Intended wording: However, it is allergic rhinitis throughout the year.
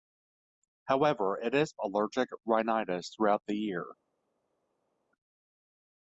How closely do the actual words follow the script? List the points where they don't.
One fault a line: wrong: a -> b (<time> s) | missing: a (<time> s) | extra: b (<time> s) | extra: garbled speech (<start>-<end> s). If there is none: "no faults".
no faults